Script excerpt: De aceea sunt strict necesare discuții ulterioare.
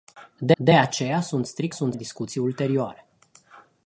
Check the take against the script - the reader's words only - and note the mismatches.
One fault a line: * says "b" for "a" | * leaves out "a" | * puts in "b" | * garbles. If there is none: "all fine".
* puts in "de"
* says "sunt" for "necesare"